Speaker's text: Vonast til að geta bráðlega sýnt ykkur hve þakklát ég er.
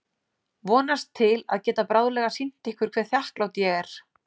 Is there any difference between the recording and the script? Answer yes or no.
no